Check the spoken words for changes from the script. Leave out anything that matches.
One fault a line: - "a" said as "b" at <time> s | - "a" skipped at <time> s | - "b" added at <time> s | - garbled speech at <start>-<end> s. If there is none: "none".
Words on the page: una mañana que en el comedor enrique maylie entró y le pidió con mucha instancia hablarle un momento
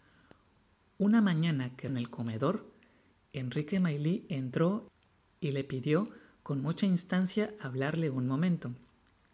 none